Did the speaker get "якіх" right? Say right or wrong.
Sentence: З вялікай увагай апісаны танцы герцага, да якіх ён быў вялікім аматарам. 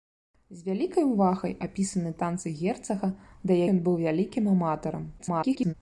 wrong